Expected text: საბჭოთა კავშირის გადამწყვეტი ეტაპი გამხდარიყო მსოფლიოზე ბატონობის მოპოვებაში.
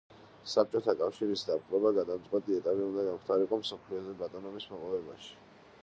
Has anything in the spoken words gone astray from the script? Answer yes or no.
yes